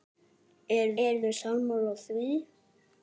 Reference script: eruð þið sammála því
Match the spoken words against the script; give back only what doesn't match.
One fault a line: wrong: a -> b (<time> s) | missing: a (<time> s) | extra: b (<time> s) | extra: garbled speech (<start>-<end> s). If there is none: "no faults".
extra: eruð (1.0 s)